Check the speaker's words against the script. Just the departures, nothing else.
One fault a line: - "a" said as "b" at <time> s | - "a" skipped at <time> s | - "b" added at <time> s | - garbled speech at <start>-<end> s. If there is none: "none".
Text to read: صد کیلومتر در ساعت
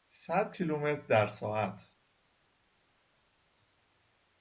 none